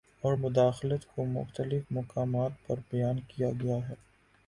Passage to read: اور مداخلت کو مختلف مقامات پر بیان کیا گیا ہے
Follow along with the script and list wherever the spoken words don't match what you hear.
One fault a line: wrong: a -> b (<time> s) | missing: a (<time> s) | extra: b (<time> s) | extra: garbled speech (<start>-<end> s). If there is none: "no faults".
no faults